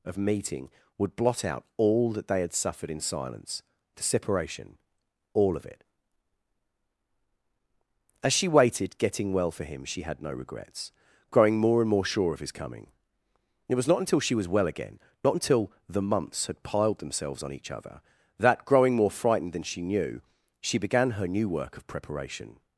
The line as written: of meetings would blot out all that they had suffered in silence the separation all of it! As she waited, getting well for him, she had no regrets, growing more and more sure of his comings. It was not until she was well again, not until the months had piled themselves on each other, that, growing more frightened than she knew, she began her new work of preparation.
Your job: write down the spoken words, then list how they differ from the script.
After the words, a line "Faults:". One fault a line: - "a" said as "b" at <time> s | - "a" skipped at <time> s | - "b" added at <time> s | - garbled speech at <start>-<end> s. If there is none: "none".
of meeting would blot out all that they had suffered in silence the separation all of it! As she waited, getting well for him, she had no regrets, growing more and more sure of his coming. It was not until she was well again, not until the months had piled themselves on each other, that, growing more frightened than she knew, she began her new work of preparation.
Faults:
- "meetings" said as "meeting" at 0.2 s
- "comings" said as "coming" at 12.5 s